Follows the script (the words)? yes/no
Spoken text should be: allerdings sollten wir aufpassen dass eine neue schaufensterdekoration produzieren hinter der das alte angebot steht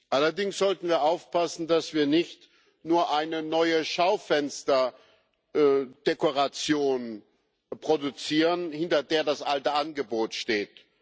no